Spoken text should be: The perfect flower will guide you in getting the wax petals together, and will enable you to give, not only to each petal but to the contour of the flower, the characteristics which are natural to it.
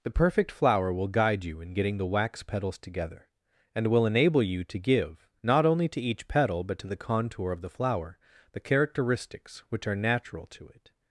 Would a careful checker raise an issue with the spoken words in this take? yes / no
no